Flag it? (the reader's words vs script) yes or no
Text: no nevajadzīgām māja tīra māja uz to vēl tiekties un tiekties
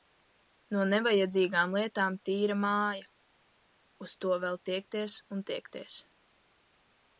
yes